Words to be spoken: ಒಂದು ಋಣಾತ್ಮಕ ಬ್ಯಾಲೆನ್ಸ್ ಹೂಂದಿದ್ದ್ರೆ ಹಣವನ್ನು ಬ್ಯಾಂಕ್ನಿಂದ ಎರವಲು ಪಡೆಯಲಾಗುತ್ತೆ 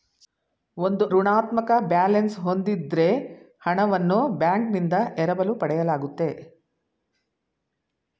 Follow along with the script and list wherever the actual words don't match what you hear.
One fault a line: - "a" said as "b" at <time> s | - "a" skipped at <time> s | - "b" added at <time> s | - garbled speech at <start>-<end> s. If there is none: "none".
none